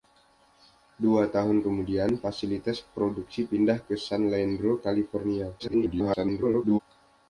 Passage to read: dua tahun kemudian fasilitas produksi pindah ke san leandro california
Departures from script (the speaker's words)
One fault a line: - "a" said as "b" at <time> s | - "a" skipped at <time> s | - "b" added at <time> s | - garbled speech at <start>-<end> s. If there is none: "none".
- garbled speech at 5.6-6.8 s